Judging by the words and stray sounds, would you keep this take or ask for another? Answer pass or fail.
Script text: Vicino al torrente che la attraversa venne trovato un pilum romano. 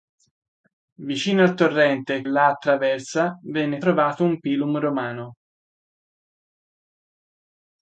fail